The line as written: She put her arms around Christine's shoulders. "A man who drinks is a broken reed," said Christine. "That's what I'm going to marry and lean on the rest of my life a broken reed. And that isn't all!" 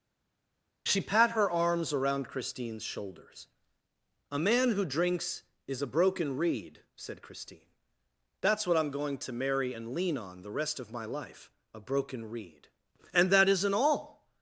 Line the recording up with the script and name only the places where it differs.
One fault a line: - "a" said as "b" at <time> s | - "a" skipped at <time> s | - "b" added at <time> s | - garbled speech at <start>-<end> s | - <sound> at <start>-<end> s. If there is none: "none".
- "put" said as "pat" at 1.0 s